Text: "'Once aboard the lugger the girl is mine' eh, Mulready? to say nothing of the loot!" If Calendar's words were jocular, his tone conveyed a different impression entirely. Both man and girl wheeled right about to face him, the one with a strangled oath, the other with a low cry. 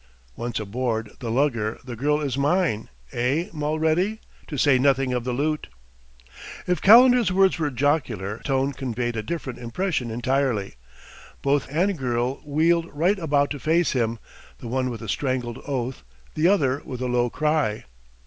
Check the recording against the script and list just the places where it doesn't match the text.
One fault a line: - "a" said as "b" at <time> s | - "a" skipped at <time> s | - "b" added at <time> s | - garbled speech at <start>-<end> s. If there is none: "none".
- "his" skipped at 8.4 s
- "man" skipped at 11.7 s